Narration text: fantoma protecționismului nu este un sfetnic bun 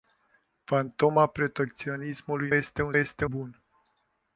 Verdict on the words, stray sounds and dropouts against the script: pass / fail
fail